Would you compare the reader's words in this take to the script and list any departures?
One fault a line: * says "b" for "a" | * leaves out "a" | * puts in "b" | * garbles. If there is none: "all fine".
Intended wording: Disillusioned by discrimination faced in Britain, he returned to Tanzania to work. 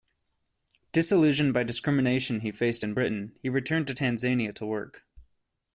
* puts in "he"